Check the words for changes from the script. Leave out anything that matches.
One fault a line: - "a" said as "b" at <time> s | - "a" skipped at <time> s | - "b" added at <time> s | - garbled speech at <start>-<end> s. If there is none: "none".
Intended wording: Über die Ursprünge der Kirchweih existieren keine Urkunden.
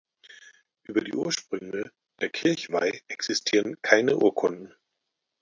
none